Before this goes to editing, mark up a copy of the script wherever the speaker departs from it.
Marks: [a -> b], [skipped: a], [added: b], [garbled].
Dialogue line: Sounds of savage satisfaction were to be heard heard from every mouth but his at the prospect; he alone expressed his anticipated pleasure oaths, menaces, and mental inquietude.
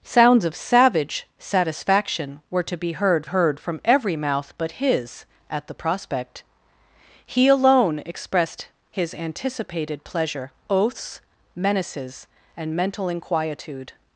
Sounds of savage satisfaction were to be heard heard from every mouth but his at the prospect; he alone expressed his anticipated pleasure oaths, menaces, and mental inquietude.